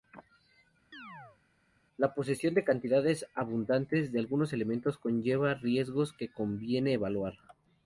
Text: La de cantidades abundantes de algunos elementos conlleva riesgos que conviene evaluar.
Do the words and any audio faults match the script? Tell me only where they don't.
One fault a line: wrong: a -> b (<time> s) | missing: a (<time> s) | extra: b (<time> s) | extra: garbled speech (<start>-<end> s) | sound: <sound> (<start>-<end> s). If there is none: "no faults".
sound: chirp (0.9-1.4 s)
extra: posesión (2.1 s)